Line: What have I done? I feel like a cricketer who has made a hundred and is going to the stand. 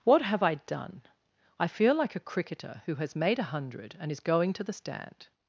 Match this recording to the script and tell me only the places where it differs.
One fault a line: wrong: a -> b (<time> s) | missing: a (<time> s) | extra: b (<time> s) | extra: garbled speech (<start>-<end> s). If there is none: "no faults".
no faults